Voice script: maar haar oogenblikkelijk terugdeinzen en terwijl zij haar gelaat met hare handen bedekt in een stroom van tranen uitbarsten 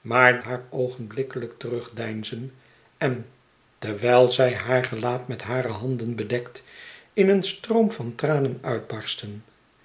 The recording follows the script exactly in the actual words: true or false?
true